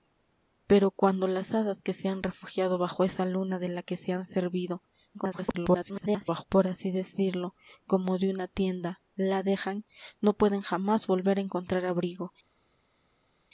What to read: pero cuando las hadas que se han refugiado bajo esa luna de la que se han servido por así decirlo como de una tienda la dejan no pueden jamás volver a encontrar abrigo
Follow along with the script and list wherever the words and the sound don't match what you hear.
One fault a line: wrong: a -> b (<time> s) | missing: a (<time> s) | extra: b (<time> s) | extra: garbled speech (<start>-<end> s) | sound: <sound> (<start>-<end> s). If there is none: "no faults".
extra: garbled speech (5.1-6.4 s)